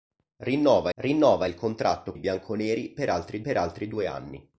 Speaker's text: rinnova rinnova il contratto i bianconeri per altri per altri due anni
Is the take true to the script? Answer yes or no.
yes